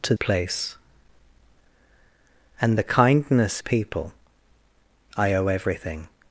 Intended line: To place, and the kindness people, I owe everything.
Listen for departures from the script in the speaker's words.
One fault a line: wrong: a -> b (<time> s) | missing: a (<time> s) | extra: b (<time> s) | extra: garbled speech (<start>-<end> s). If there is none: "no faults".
no faults